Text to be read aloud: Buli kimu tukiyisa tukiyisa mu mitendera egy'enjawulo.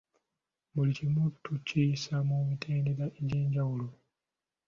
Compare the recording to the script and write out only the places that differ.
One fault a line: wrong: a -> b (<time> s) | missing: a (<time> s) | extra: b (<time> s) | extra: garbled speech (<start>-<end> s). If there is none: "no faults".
missing: tukiyisa (2.1 s)